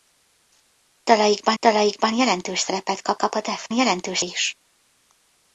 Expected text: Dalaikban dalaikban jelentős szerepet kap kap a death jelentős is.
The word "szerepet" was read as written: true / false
true